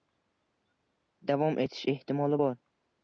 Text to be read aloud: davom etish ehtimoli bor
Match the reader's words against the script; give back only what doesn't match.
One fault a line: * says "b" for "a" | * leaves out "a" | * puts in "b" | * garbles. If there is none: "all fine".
all fine